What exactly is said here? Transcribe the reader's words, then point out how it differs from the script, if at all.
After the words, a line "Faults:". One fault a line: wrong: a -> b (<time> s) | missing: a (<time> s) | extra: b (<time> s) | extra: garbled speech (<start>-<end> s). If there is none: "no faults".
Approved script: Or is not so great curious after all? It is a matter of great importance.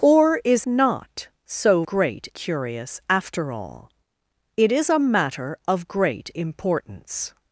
Or is not so great curious after all? It is a matter of great importance.
Faults:
no faults